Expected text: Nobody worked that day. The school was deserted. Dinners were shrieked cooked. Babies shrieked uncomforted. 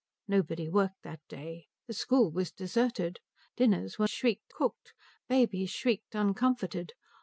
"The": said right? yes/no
yes